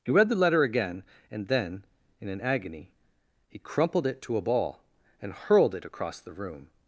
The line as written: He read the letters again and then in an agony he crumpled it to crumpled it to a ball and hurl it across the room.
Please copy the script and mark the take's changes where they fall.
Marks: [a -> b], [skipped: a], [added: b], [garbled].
He read the [letters -> letter] again and then in an agony he crumpled it to [skipped: crumpled it to] a ball and [hurl -> hurled] it across the room.